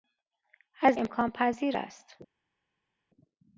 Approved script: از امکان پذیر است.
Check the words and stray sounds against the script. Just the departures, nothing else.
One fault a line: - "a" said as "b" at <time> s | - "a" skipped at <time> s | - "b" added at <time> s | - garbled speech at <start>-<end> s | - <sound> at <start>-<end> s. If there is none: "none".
none